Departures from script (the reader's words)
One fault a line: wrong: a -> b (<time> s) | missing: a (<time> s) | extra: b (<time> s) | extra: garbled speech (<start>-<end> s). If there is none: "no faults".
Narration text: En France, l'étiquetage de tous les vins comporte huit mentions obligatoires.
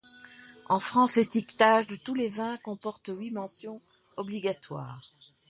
no faults